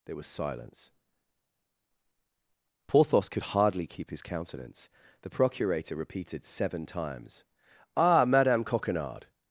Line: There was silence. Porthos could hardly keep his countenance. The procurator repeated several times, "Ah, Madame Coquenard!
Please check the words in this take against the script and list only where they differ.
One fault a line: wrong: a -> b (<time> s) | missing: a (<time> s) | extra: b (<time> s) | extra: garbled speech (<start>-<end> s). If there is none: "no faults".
wrong: several -> seven (6.5 s)